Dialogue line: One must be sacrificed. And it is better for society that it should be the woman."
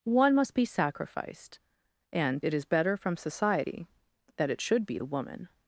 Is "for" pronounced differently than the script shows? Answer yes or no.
yes